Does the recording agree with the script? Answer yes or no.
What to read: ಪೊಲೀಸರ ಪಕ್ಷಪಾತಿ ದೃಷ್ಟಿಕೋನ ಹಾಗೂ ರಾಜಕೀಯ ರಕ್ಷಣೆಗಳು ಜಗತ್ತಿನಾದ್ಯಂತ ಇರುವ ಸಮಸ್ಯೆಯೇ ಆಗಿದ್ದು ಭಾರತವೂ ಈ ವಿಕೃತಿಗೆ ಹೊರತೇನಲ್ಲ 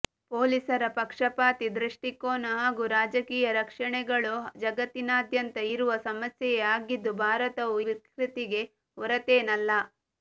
no